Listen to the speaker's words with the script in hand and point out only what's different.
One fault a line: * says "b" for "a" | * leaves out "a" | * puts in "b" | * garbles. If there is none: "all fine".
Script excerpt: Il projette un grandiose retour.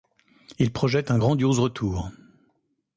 all fine